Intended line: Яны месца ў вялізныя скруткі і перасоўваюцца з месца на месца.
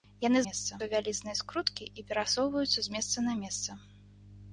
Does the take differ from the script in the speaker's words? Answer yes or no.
no